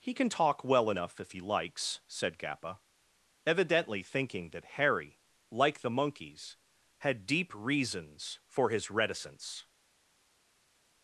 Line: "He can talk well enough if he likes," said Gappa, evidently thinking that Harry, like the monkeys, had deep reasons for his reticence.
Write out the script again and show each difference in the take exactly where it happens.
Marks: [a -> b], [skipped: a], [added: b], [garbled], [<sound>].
"He can talk well enough if he likes," said Gappa, evidently thinking that Harry, like the monkeys, had deep reasons for his reticence.